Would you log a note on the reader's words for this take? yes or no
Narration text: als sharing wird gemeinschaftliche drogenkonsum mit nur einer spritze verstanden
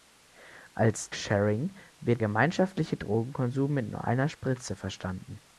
no